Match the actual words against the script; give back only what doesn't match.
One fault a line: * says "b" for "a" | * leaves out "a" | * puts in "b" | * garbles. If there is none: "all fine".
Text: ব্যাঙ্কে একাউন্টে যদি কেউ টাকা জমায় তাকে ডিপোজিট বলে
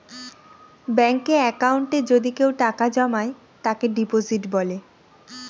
all fine